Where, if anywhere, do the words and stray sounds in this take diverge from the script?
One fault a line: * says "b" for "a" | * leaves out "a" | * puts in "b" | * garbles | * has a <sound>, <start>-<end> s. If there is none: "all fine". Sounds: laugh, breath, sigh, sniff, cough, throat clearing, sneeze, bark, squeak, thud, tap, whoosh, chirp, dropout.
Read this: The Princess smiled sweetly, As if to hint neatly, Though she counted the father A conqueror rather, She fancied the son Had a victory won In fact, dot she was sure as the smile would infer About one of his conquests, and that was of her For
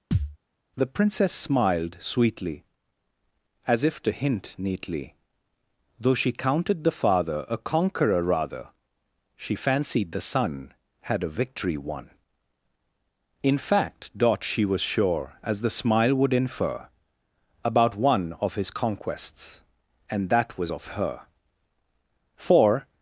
* has a thud, 0.1-0.4 s